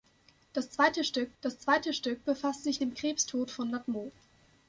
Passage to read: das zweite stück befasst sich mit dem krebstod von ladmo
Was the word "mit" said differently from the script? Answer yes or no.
yes